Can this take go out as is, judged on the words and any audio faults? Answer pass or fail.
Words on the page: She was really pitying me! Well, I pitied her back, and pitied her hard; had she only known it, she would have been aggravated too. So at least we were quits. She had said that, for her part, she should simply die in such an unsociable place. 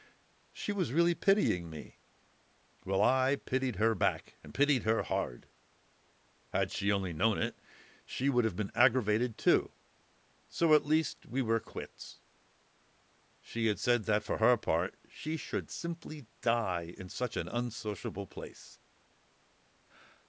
pass